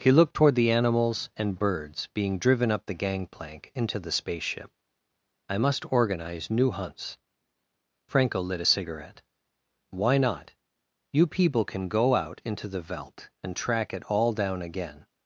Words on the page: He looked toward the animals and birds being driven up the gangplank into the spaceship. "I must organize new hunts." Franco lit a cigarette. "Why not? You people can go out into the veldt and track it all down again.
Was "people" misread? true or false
false